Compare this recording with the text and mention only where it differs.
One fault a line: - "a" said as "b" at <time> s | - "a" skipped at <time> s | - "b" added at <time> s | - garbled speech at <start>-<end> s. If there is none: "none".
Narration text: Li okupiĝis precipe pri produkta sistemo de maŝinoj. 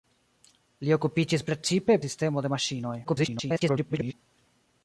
- "pri produkta" skipped at 2.0 s
- garbled speech at 3.0-4.1 s